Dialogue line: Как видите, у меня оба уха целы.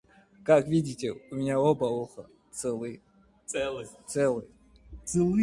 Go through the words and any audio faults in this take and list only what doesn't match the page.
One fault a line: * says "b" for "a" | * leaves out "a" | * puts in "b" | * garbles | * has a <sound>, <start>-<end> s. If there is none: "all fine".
all fine